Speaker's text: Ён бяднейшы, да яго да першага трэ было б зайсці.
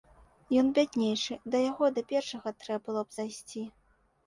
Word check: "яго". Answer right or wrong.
right